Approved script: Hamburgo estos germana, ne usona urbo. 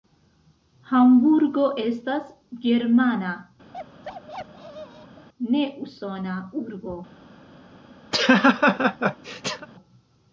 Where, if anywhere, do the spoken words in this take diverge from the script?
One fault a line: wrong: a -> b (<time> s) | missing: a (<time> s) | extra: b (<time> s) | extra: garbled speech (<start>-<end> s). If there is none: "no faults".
wrong: estos -> estas (1.8 s)